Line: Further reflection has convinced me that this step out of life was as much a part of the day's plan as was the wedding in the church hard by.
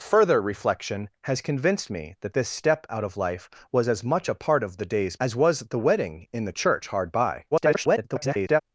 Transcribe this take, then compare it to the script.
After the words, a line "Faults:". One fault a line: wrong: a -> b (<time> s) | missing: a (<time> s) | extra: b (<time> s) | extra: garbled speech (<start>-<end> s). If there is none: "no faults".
Further reflection has convinced me that this step out of life was as much a part of the day's as was the wedding in the church hard by. [garbled]
Faults:
missing: plan (5.1 s)
extra: garbled speech (7.5-8.6 s)